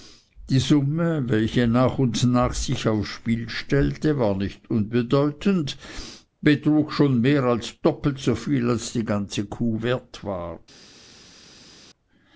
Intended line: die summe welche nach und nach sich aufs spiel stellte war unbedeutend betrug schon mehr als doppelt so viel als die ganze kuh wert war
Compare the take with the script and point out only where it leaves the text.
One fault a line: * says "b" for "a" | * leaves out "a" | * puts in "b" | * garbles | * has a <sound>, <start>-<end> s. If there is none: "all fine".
* puts in "nicht"